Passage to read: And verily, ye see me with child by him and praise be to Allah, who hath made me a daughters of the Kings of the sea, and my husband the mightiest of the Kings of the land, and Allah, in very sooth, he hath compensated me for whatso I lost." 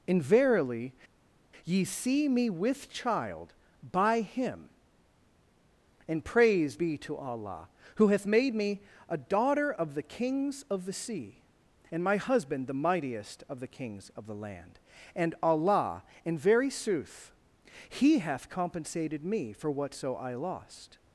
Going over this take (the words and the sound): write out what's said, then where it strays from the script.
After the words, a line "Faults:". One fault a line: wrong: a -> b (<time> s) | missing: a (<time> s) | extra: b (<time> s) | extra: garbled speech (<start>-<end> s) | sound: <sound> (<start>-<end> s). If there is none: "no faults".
And verily, ye see me with child by him and praise be to Allah, who hath made me a daughter of the Kings of the sea, and my husband the mightiest of the Kings of the land, and Allah, in very sooth, he hath compensated me for whatso I lost."
Faults:
wrong: daughters -> daughter (9.2 s)